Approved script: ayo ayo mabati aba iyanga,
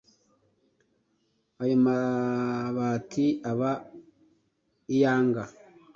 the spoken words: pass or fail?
fail